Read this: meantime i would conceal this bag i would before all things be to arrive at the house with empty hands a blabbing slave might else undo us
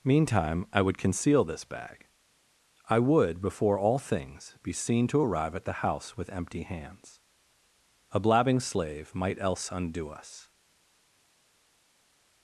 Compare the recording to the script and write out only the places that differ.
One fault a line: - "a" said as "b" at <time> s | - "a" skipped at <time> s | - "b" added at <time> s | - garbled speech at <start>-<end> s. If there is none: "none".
- "seen" added at 4.7 s